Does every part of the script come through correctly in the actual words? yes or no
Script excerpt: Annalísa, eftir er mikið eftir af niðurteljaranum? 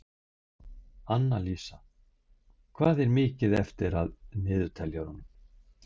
no